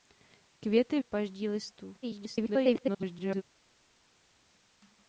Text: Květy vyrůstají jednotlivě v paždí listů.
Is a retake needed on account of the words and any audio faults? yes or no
yes